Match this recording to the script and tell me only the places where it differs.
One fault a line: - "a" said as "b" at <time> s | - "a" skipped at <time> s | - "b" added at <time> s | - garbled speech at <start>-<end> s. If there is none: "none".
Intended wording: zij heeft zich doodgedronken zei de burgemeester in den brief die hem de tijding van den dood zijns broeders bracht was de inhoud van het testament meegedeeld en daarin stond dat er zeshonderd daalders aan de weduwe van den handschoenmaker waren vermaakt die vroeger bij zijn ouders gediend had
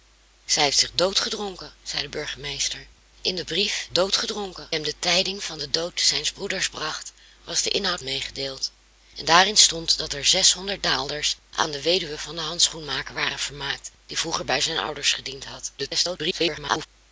- "die" said as "doodgedronken" at 3.9 s
- "van het testament" skipped at 8.0 s
- garbled speech at 15.8-16.9 s